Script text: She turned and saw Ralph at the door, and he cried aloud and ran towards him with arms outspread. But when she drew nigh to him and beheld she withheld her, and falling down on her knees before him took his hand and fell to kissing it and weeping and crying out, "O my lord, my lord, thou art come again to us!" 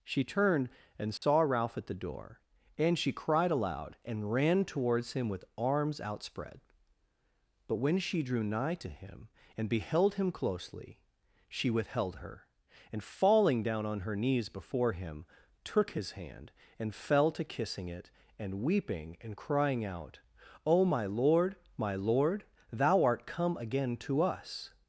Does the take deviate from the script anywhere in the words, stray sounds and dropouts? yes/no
yes